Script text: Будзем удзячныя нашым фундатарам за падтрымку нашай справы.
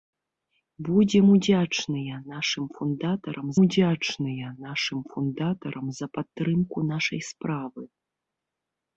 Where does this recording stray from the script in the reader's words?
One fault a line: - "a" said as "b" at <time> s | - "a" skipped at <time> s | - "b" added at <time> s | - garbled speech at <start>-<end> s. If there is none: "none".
- "удзячныя нашым фундатарам" added at 3.6 s